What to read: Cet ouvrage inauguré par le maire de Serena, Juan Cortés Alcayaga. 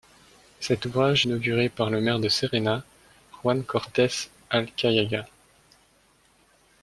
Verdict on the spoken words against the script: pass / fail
pass